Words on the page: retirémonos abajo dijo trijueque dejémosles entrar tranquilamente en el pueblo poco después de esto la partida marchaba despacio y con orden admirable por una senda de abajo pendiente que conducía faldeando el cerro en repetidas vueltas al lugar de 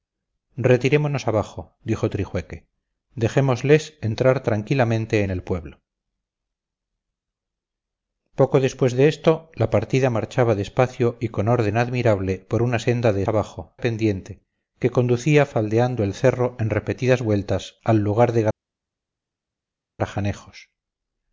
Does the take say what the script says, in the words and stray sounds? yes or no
yes